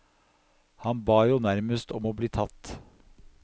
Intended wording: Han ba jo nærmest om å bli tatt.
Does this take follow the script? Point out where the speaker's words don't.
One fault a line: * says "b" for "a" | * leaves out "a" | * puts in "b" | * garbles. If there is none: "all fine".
all fine